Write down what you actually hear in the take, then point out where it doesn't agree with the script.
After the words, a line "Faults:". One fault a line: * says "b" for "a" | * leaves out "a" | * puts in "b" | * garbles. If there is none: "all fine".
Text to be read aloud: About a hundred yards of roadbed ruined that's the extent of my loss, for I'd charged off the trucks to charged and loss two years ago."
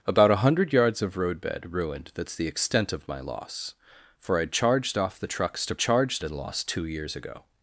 About a hundred yards of roadbed ruined that's the extent of my loss, for I'd charged off the trucks to charged and loss two years ago."
Faults:
all fine